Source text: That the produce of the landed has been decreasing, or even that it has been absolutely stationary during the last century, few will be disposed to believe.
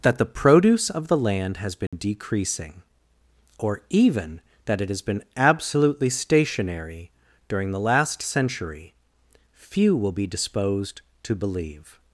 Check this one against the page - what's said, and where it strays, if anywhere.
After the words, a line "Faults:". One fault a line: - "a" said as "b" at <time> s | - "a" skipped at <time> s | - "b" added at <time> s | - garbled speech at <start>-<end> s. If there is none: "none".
That the produce of the land has been decreasing, or even that it has been absolutely stationary during the last century, few will be disposed to believe.
Faults:
- "landed" said as "land" at 1.2 s